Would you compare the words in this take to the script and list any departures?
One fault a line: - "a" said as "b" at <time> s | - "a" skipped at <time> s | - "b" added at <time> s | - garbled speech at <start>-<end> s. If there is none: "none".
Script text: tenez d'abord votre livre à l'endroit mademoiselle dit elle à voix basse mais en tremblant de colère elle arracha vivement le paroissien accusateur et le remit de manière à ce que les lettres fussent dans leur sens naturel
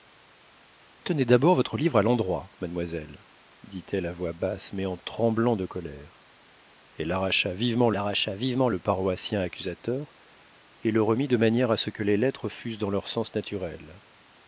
- "arracha vivement" added at 8.0 s